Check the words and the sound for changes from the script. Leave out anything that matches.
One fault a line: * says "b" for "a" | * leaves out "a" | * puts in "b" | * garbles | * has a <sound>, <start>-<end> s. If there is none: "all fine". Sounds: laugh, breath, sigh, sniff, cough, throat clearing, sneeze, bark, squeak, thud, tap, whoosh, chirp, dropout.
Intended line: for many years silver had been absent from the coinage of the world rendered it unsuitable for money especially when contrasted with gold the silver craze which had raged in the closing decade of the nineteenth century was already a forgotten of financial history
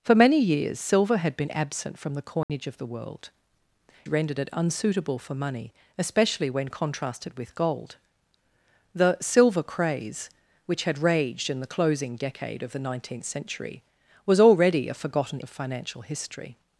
* has a dropout, 2.4-2.5 s